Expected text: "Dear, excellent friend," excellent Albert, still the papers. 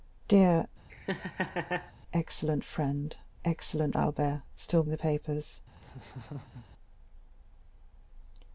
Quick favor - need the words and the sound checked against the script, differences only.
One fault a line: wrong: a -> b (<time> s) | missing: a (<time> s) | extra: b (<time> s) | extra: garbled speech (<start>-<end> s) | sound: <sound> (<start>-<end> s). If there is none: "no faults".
sound: laugh (0.9-1.9 s)
sound: laugh (5.7-6.7 s)